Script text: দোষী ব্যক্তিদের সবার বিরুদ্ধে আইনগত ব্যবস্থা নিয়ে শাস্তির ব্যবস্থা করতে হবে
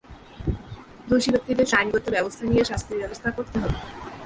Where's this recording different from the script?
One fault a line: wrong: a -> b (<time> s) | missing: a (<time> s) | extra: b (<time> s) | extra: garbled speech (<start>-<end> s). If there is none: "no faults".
missing: সবার বিরুদ্ধে (1.7 s)